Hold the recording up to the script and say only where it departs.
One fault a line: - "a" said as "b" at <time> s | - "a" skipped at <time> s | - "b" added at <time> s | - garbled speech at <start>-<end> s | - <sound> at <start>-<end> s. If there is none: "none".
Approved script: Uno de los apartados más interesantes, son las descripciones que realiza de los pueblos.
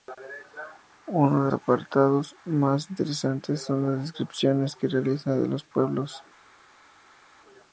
- "los" skipped at 1.5 s